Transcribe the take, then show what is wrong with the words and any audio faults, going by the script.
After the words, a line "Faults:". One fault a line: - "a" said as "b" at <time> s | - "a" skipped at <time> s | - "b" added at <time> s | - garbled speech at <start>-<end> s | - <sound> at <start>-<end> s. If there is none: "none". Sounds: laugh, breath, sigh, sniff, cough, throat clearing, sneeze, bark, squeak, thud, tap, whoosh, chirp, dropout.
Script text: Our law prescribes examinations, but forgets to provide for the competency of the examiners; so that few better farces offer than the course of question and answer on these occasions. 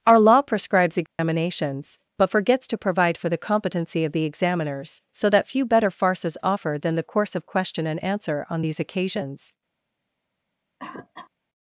Our law prescribes examinations, but forgets to provide for the competency of the examiners; so that few better farces offer than the course of question and answer on these occasions.
Faults:
- dropout at 1.1-1.2 s
- cough at 10.8-11.3 s